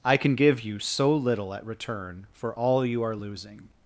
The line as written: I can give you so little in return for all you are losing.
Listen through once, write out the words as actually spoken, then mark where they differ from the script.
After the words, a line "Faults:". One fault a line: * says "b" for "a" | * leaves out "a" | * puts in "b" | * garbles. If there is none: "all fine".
I can give you so little at return for all you are losing.
Faults:
* says "at" for "in"